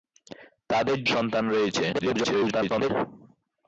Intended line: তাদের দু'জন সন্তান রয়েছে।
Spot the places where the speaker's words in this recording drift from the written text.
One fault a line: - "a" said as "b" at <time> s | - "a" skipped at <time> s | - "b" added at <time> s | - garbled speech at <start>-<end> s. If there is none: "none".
- "দু'জন" skipped at 1.0 s
- garbled speech at 1.9-2.9 s